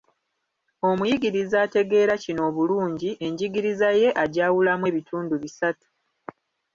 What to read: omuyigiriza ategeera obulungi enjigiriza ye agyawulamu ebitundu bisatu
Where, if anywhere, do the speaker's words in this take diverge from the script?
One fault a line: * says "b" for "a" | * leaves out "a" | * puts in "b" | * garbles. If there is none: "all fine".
* puts in "kino"